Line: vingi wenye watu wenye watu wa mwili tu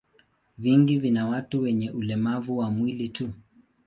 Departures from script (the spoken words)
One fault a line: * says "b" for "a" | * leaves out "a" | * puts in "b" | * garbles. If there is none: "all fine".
* says "vina" for "wenye"
* says "ulemavu" for "watu"